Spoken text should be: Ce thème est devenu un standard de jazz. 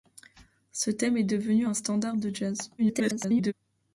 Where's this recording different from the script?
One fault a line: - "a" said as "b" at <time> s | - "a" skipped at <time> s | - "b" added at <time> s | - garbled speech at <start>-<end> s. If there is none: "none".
- garbled speech at 2.8-3.5 s